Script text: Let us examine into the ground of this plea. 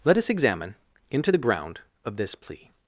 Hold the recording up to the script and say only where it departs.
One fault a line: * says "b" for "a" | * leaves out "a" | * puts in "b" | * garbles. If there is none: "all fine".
all fine